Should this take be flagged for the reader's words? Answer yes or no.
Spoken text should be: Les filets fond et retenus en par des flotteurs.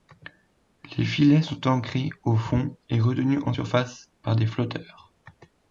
yes